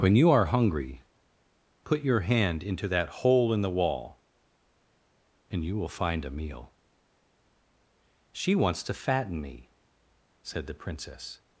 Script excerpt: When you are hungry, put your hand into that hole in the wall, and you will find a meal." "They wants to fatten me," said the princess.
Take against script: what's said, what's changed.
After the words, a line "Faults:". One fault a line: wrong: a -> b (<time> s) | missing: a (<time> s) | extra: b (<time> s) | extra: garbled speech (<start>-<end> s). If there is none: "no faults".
When you are hungry, put your hand into that hole in the wall, and you will find a meal." "She wants to fatten me," said the princess.
Faults:
wrong: They -> She (8.3 s)